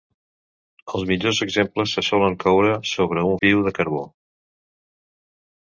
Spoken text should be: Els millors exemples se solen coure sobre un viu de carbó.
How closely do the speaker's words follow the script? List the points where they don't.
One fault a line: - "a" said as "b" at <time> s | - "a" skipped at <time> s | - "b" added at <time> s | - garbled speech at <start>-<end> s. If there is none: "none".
none